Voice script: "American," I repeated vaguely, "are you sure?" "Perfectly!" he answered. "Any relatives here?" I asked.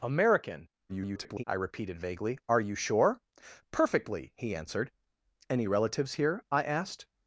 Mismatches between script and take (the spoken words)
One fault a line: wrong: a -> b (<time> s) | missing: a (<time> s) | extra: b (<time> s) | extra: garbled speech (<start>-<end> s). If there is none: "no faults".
extra: garbled speech (0.9-1.4 s)